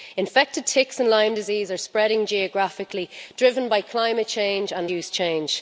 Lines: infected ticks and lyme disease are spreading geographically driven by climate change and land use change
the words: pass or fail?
fail